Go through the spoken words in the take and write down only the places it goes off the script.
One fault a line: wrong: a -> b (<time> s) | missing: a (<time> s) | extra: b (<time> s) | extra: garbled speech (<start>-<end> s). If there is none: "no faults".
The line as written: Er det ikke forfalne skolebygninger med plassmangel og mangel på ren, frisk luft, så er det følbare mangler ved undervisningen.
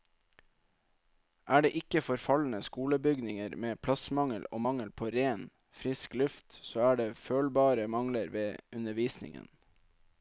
no faults